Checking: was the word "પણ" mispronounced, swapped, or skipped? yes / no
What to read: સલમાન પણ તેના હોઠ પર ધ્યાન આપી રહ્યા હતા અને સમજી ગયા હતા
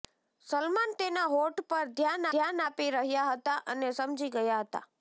yes